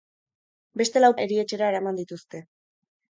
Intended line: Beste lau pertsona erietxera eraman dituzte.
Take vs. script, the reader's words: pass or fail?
fail